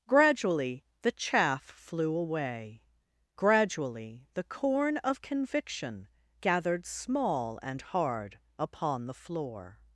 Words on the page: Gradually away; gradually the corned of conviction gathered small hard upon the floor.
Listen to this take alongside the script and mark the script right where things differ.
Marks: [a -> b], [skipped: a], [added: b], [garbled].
Gradually [added: the chaff flew] away; gradually the [corned -> corn] of conviction gathered small [added: and] hard upon the floor.